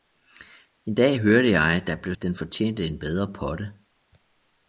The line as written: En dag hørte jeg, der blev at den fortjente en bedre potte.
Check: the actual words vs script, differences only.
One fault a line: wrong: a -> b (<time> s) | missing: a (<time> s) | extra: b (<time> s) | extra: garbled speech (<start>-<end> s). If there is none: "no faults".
no faults